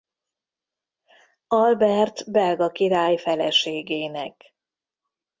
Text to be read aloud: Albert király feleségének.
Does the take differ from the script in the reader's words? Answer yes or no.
yes